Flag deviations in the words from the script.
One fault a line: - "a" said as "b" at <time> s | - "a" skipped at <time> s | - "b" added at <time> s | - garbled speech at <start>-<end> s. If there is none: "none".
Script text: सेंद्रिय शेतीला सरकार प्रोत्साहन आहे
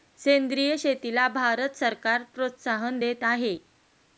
- "भारत" added at 1.3 s
- "देत" added at 3.0 s